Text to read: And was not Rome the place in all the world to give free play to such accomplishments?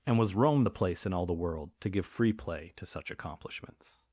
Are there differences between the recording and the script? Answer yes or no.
yes